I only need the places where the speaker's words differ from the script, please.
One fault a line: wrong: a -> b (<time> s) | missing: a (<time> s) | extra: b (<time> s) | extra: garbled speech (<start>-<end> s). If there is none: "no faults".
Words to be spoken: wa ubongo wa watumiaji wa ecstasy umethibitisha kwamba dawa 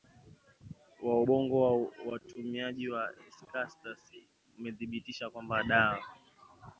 no faults